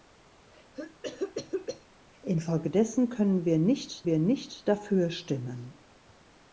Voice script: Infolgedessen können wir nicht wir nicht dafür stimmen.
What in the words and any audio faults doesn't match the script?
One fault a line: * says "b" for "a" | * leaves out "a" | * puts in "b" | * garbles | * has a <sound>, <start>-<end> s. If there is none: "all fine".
* has a cough, 0.7-1.9 s